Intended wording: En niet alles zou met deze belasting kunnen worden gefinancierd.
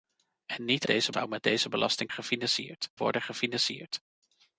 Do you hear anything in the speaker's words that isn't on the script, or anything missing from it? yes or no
yes